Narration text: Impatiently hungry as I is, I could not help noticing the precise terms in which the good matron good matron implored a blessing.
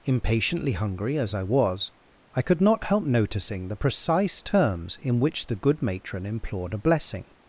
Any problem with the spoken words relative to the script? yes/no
yes